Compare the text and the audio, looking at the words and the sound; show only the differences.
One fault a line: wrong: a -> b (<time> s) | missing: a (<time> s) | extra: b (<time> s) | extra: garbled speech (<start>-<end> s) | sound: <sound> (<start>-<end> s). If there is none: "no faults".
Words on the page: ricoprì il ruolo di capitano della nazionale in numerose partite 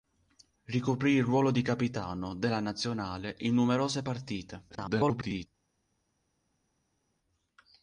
extra: garbled speech (4.7-5.5 s)